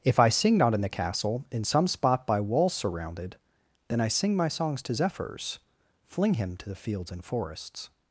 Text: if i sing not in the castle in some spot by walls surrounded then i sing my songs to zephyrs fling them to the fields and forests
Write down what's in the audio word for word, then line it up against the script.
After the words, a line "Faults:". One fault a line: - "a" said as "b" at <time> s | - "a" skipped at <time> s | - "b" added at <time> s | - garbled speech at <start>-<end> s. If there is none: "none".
if i sing not in the castle in some spot by walls surrounded then i sing my songs to zephyrs fling him to the fields and forests
Faults:
- "them" said as "him" at 6.3 s